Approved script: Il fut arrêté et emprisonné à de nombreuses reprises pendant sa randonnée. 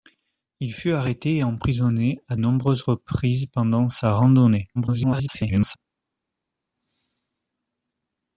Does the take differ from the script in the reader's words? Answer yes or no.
yes